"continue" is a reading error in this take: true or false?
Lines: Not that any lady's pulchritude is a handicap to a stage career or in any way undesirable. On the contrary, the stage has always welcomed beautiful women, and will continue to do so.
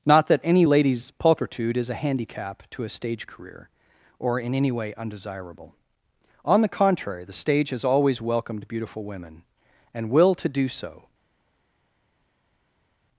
true